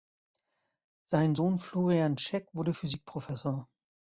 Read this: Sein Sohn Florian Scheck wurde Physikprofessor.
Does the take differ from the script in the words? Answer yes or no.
no